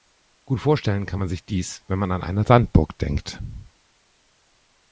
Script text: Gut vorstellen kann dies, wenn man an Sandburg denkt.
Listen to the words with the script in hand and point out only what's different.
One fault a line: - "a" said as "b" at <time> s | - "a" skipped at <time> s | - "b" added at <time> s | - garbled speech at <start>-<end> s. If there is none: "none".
- "man sich" added at 1.2 s
- "eine" added at 2.2 s